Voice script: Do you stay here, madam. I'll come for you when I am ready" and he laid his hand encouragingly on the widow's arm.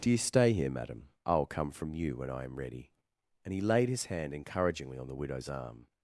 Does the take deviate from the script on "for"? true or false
true